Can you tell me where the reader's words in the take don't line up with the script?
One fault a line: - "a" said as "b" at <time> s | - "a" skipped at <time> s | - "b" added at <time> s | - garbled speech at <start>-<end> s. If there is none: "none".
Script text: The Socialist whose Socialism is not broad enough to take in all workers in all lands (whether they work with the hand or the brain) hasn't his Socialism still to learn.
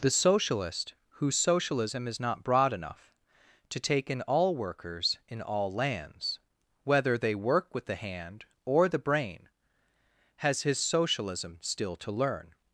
- "hasn't" said as "has" at 10.4 s